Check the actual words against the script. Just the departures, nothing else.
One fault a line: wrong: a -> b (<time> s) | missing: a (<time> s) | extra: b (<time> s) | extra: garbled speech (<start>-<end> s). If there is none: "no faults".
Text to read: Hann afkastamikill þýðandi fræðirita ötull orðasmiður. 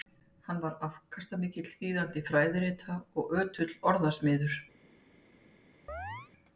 extra: var (0.6 s)
extra: og (3.2 s)